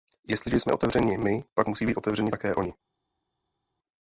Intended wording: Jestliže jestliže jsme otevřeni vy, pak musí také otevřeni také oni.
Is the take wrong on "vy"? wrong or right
wrong